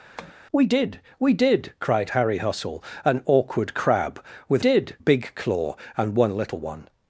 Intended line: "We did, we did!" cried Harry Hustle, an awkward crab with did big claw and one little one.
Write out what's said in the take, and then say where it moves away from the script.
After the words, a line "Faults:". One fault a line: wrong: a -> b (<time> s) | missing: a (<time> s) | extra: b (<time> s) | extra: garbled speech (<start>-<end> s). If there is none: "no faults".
"We did, we did!" cried Harry Hustle, an awkward crab with did big claw and one little one.
Faults:
no faults